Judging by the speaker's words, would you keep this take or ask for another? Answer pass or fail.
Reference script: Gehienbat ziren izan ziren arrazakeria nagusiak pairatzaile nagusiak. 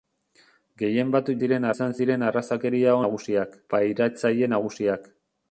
pass